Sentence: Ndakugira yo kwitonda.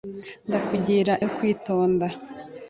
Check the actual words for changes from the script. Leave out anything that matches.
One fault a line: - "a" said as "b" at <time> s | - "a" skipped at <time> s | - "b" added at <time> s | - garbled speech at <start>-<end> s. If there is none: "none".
none